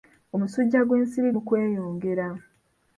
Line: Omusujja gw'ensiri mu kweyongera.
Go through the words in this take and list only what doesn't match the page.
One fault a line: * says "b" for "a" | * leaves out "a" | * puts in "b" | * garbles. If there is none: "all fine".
all fine